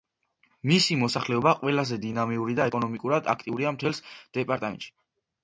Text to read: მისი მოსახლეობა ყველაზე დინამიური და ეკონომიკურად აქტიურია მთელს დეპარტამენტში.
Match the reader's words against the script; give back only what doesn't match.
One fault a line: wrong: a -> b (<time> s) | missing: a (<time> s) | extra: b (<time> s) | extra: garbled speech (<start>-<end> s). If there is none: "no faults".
no faults